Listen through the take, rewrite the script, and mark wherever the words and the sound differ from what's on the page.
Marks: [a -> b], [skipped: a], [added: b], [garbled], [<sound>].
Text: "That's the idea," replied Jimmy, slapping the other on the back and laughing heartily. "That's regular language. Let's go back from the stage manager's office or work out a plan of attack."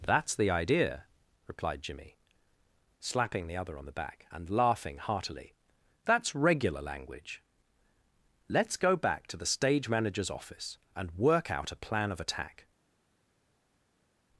"That's the idea," replied Jimmy, slapping the other on the back and laughing heartily. "That's regular language. Let's go back [from -> to] the stage manager's office [or -> and] work out a plan of attack."